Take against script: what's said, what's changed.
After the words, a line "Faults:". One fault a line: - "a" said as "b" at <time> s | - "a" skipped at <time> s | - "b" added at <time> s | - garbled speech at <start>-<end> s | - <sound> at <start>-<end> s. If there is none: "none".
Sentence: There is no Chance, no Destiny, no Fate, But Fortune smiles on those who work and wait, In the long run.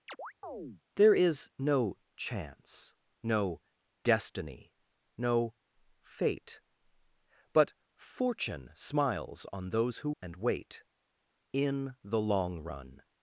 There is no Chance, no Destiny, no Fate, But Fortune smiles on those who and wait, In the long run.
Faults:
- chirp at 0.1-0.8 s
- "work" skipped at 10.1 s